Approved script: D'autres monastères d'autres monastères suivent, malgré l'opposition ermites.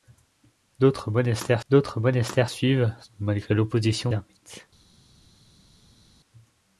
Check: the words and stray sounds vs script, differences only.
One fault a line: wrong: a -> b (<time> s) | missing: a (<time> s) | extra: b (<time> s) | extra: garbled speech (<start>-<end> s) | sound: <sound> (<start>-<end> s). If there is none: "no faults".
no faults